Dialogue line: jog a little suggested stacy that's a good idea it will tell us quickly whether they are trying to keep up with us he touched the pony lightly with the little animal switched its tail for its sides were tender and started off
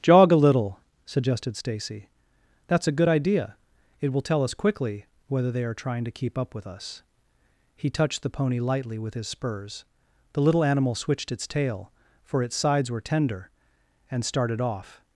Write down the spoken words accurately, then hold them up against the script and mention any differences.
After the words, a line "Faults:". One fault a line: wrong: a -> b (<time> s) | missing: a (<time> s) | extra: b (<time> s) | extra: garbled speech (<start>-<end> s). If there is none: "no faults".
jog a little suggested stacy that's a good idea it will tell us quickly whether they are trying to keep up with us he touched the pony lightly with his spurs the little animal switched its tail for its sides were tender and started off
Faults:
extra: his spurs (9.1 s)